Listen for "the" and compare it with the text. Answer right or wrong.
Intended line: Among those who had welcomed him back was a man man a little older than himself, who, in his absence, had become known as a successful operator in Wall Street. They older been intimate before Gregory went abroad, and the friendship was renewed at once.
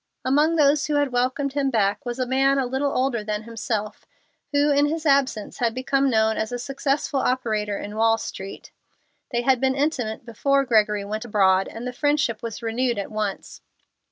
right